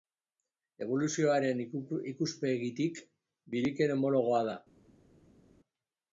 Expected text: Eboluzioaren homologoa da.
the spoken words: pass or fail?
fail